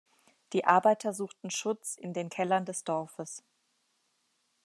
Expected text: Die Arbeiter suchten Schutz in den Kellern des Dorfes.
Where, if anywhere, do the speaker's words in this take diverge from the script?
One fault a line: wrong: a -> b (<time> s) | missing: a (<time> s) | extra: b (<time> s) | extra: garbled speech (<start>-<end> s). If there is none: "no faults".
no faults